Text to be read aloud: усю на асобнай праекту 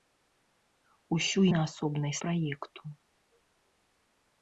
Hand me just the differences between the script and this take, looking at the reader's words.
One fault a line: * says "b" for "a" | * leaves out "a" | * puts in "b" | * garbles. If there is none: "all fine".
all fine